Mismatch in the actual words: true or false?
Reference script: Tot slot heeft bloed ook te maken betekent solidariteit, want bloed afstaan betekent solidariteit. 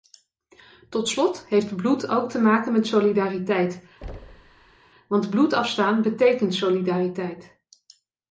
true